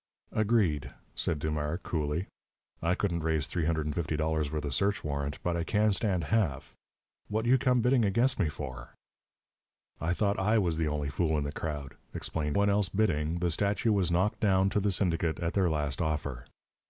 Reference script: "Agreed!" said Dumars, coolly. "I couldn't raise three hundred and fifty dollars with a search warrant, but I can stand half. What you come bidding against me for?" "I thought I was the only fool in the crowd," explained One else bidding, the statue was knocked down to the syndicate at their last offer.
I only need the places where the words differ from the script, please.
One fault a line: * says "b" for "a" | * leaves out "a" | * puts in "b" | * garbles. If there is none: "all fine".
all fine